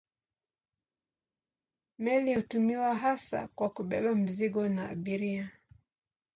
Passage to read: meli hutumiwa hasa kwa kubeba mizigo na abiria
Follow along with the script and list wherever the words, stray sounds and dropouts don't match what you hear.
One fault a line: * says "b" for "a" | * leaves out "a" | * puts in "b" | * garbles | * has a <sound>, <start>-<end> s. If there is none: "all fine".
all fine